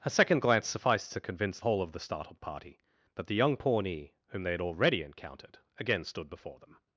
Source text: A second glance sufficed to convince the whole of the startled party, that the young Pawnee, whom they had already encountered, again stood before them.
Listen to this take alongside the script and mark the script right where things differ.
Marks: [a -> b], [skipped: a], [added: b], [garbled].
A second glance sufficed to convince [skipped: the] whole of the startled party, that the young Pawnee, whom they had already encountered, again stood before them.